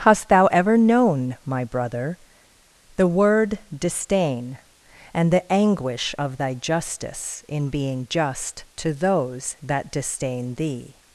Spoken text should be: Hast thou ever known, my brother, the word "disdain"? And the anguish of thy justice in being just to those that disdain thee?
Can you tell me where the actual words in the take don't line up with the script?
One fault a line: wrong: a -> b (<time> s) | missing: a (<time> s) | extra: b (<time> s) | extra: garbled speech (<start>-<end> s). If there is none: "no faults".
no faults